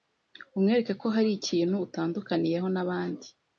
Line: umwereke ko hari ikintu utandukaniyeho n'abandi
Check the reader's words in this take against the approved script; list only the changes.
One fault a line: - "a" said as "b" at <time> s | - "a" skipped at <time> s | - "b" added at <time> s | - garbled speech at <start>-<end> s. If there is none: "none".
none